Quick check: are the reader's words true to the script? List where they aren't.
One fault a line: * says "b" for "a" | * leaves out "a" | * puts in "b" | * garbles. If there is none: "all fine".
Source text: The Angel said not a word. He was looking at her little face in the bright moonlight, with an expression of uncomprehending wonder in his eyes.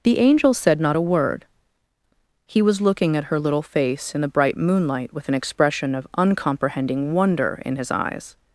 all fine